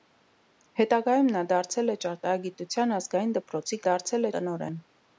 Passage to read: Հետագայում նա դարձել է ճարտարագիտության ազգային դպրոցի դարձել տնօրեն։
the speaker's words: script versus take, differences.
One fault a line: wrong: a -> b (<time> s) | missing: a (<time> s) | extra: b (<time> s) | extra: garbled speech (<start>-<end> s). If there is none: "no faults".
no faults